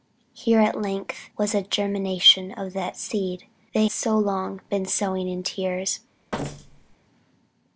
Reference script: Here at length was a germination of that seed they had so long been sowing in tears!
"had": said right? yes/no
no